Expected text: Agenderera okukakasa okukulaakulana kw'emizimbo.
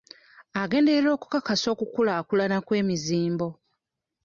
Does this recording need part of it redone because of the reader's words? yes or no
no